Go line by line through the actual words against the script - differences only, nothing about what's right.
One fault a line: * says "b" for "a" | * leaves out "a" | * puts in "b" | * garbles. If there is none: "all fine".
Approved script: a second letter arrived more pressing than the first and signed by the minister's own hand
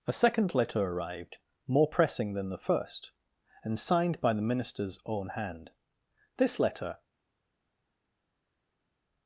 * puts in "this letter"